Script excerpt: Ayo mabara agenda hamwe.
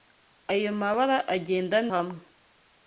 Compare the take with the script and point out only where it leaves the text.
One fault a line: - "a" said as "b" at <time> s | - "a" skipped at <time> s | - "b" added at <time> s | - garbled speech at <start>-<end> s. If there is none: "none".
none